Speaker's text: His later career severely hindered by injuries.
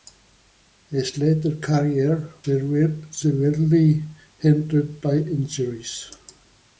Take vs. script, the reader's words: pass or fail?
pass